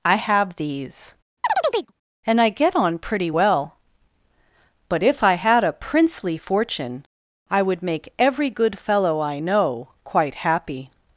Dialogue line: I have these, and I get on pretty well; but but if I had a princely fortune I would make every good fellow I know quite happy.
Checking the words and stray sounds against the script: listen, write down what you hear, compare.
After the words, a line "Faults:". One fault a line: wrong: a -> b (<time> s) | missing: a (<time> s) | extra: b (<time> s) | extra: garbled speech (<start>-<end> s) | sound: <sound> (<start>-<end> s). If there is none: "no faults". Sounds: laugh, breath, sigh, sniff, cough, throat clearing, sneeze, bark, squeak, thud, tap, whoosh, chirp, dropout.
I have these, and I get on pretty well; but if I had a princely fortune I would make every good fellow I know quite happy.
Faults:
sound: chirp (1.4-1.9 s)
missing: but (5.0 s)